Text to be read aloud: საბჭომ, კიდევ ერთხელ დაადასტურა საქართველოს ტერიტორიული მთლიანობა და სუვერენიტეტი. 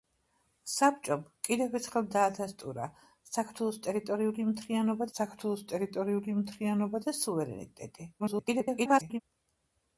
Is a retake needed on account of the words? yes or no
yes